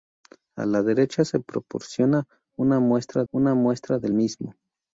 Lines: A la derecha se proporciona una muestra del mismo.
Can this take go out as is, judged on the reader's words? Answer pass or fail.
fail